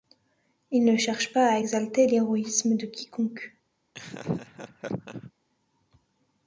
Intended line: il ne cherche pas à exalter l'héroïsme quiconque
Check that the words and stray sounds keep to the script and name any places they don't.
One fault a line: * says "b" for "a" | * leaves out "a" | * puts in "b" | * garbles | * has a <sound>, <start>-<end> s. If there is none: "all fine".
* puts in "de"
* has a laugh, 3.9-5.3 s